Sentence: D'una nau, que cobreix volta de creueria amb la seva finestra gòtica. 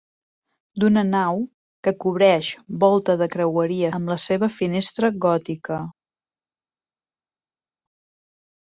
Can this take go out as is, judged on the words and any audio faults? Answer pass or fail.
pass